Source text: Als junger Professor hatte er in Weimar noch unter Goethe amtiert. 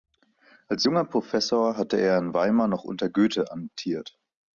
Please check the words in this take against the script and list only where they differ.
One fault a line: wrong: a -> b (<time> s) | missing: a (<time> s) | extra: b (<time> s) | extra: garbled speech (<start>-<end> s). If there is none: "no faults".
no faults